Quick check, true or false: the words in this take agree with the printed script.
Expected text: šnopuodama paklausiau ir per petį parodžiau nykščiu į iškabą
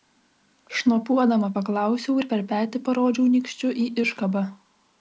true